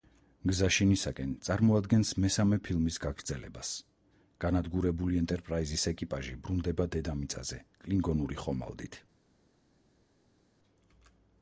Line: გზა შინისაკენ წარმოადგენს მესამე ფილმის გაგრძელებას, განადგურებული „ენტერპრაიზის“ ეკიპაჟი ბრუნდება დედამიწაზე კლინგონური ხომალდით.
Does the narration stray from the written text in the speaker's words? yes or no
no